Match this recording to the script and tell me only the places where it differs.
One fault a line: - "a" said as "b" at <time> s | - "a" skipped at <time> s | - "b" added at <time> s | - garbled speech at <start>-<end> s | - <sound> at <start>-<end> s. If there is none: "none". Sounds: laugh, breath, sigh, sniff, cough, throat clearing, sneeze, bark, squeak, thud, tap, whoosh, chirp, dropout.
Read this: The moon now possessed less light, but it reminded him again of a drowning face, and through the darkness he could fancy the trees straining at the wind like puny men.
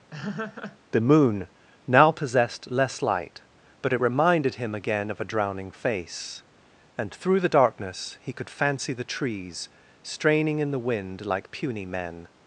- laugh at 0.1-0.8 s
- "at" said as "in" at 10.6 s